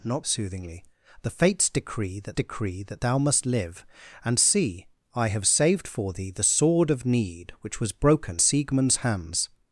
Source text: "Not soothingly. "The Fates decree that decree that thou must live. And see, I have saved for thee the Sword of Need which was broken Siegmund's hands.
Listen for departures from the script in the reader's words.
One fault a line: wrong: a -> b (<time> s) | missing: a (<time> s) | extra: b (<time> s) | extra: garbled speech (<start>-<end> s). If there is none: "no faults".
no faults